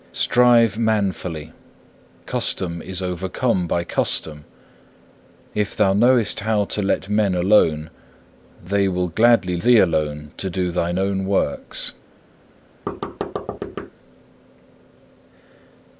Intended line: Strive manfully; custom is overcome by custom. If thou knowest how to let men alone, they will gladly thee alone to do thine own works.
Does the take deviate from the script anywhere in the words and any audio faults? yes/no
yes